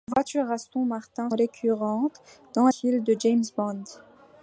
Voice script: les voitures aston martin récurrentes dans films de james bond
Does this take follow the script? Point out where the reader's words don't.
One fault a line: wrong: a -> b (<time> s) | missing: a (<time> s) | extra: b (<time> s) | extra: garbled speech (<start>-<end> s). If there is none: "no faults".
no faults